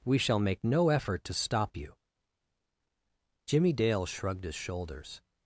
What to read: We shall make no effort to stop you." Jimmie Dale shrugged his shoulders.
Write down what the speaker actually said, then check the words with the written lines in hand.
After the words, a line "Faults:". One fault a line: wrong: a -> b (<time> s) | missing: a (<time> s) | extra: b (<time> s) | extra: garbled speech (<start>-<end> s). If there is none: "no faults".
We shall make no effort to stop you." Jimmie Dale shrugged his shoulders.
Faults:
no faults